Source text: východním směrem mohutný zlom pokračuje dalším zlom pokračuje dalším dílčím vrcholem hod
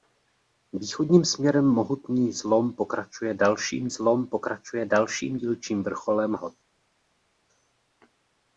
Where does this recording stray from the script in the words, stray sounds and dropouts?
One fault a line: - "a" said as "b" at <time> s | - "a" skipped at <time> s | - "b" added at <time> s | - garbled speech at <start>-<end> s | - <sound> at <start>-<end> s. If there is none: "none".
none